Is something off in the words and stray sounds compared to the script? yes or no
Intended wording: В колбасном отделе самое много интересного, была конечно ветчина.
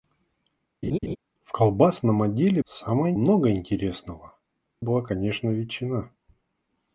yes